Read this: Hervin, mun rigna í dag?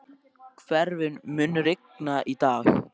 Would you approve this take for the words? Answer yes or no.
yes